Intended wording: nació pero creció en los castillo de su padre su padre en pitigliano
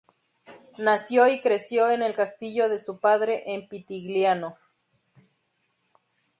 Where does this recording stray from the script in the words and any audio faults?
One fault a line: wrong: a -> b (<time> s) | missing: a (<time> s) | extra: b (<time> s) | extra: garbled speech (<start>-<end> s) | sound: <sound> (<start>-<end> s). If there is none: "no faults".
wrong: pero -> y (1.3 s)
wrong: los -> el (2.0 s)
missing: su padre (3.5 s)